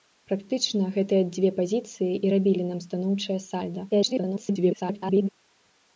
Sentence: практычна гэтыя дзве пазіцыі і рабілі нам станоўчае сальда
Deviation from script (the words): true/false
true